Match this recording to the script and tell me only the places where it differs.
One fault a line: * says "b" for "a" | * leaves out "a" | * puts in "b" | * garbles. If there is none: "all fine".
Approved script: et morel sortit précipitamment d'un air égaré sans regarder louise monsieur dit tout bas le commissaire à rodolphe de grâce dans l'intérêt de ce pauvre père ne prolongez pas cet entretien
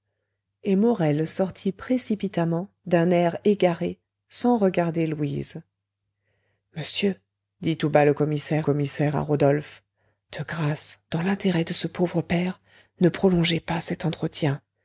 * puts in "commissaire"